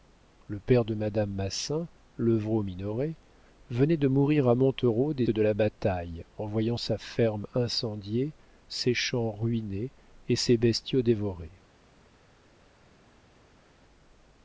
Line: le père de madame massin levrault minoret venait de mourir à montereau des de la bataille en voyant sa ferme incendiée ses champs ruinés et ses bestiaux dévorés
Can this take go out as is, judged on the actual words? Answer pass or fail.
pass